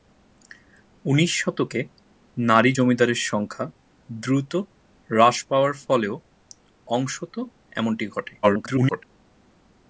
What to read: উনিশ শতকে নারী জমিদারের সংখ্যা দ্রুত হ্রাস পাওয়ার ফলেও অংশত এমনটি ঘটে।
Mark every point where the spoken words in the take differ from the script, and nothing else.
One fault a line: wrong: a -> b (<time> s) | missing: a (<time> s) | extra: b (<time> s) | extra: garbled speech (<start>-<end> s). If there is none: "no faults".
extra: garbled speech (8.4-9.0 s)